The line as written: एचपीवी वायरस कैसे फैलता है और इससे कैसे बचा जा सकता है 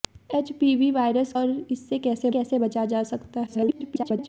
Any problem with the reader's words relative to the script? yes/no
yes